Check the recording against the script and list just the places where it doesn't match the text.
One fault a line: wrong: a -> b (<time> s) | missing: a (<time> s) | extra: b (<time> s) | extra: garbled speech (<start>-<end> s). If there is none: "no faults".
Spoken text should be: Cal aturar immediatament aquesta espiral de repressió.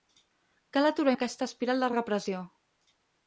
missing: immediatament (1.1 s)